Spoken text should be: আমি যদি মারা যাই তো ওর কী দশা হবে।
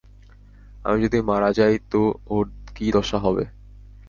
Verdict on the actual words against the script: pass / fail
pass